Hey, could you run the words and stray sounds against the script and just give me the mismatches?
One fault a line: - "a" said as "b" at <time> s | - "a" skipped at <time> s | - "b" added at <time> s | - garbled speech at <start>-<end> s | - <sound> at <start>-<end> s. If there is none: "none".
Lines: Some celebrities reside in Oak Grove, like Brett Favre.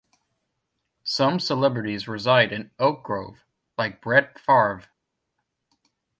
none